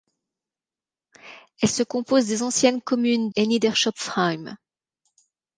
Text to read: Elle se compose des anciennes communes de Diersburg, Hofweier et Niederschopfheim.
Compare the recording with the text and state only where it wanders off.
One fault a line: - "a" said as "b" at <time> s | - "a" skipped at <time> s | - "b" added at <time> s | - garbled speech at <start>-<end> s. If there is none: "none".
- "de Diersburg Hofweier" skipped at 3.3 s